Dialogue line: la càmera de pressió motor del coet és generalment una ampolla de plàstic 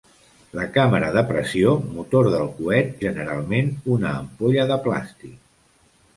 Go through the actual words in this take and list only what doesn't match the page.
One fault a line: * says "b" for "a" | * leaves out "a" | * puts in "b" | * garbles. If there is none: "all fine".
* leaves out "és"